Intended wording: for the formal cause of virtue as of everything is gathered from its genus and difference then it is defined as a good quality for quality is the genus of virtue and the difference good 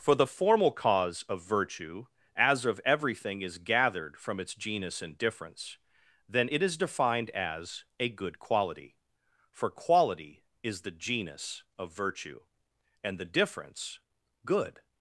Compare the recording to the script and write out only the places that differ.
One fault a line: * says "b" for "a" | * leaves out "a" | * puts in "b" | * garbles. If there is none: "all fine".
all fine